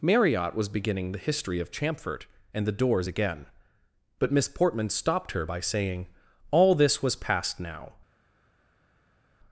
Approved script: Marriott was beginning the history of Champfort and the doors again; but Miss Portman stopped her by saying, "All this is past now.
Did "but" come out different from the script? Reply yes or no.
no